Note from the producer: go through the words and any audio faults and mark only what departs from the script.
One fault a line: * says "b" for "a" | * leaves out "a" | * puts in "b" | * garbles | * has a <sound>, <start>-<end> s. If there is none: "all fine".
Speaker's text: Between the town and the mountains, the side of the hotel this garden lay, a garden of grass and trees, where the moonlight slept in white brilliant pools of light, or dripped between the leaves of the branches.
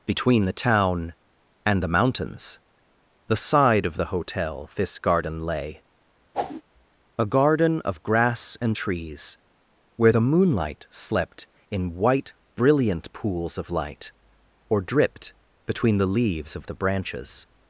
* has a whoosh, 6.3-6.6 s